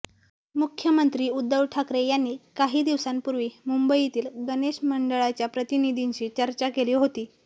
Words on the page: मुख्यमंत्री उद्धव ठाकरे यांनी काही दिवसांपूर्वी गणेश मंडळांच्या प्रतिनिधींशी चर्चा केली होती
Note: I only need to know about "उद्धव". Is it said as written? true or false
true